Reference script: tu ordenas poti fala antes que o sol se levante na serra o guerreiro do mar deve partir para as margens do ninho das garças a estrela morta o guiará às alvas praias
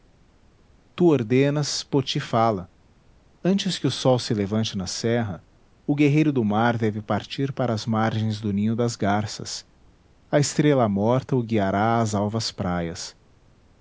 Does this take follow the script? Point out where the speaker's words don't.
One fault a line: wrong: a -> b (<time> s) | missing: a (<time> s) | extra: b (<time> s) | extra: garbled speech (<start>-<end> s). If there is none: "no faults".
no faults